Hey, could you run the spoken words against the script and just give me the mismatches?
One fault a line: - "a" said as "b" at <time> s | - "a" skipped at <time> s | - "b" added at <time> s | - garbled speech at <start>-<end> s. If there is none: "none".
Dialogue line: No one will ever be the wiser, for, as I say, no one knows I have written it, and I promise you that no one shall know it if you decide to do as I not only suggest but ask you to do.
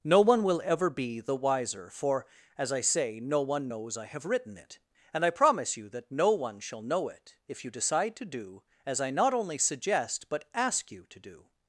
none